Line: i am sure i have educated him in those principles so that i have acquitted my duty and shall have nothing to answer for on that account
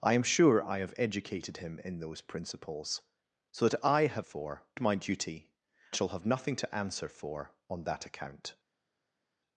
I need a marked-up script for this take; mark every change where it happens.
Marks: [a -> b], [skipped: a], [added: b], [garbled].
i am sure i have educated him in those principles so that i have [acquitted -> for] my duty [skipped: and] shall have nothing to answer for on that account